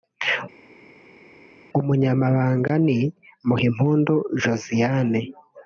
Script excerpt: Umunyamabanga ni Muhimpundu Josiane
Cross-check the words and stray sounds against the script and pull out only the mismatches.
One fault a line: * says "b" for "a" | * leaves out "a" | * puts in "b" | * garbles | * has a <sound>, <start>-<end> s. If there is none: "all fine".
all fine